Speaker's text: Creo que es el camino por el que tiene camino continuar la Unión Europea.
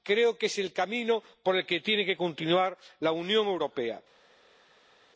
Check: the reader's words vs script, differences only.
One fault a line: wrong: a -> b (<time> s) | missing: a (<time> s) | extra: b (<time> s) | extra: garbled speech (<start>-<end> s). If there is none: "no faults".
wrong: camino -> que (2.0 s)